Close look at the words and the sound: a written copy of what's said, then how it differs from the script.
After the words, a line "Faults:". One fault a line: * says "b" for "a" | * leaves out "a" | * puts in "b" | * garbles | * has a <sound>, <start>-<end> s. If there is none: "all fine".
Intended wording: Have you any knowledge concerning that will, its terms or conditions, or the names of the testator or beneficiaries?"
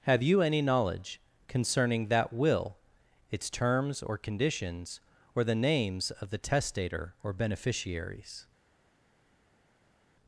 Have you any knowledge concerning that will, its terms or conditions, or the names of the testator or beneficiaries?"
Faults:
all fine